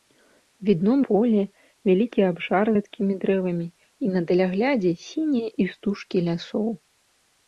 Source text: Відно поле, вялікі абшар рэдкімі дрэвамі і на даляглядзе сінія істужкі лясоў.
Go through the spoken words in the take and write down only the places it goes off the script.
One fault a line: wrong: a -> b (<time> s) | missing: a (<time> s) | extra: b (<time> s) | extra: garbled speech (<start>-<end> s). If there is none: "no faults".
no faults